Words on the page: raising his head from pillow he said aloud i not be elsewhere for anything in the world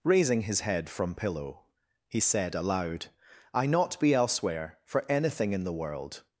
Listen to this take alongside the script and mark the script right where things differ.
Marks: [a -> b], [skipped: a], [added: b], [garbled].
raising his head from pillow he said aloud i not be elsewhere for anything in the world